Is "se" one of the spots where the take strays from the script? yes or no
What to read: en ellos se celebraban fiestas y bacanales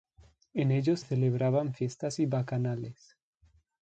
yes